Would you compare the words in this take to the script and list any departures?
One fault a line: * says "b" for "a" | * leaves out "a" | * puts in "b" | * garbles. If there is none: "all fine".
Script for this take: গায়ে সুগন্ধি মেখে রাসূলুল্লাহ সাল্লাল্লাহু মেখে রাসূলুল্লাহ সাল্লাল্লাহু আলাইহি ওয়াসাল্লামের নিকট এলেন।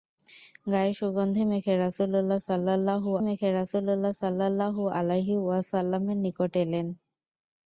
all fine